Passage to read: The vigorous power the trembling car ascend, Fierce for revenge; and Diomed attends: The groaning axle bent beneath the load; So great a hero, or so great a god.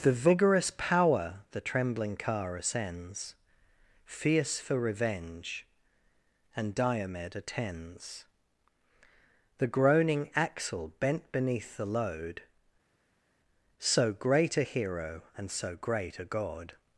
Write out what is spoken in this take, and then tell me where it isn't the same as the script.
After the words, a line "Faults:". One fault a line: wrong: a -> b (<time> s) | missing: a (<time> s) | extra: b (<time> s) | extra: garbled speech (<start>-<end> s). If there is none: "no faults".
The vigorous power the trembling car ascends, Fierce for revenge; and Diomed attends: The groaning axle bent beneath the load; So great a hero, and so great a god.
Faults:
wrong: ascend -> ascends (2.6 s)
wrong: or -> and (15.4 s)